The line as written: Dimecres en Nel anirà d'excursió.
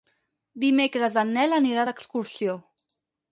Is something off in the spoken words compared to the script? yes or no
no